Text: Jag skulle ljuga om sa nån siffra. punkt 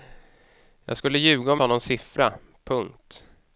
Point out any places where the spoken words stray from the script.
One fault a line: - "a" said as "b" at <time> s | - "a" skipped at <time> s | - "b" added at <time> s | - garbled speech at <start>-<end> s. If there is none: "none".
none